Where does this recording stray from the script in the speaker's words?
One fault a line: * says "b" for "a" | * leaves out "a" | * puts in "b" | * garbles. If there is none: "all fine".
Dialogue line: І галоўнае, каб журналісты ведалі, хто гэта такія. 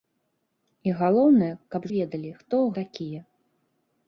* leaves out "журналісты"
* leaves out "гэта"